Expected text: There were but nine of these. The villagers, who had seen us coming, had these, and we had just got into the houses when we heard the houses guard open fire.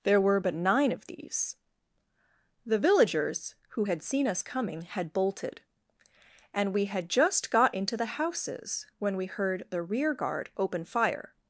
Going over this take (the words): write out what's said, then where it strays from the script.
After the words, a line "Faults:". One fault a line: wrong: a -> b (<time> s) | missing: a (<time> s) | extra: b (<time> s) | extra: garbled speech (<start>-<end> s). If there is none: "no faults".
There were but nine of these. The villagers, who had seen us coming, had bolted, and we had just got into the houses when we heard the rear guard open fire.
Faults:
wrong: these -> bolted (5.1 s)
wrong: houses -> rear (9.8 s)